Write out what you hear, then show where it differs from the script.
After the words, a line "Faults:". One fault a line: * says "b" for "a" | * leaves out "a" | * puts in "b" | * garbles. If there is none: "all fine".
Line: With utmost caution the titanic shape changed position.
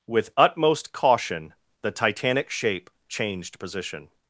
With utmost caution the titanic shape changed position.
Faults:
all fine